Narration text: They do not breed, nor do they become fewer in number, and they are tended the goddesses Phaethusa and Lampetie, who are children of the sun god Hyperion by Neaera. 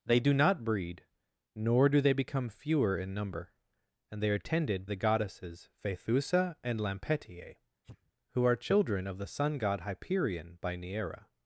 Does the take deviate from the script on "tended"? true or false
false